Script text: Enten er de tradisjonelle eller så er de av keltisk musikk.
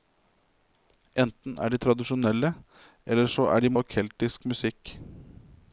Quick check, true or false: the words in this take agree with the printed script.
true